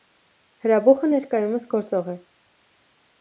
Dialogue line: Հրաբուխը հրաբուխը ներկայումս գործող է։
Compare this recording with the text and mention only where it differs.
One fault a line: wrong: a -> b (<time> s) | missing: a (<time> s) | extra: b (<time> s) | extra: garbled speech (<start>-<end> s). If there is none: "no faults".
missing: հրաբուխը (1.1 s)